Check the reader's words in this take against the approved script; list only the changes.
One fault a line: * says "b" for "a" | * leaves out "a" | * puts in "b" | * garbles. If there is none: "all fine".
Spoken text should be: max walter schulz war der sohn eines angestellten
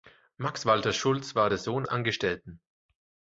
* leaves out "eines"